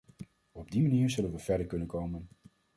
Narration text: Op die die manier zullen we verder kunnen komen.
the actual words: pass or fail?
fail